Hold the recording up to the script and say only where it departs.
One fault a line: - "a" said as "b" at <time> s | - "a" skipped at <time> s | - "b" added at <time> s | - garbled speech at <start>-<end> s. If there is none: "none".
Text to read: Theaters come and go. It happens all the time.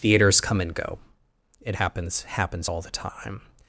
- "happens" added at 2.2 s